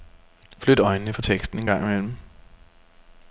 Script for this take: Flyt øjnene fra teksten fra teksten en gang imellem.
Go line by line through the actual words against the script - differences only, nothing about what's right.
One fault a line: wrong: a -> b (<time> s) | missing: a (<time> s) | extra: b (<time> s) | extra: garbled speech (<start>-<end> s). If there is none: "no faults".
missing: fra teksten (1.6 s)